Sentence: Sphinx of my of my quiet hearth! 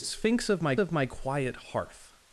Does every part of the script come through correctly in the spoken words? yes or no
yes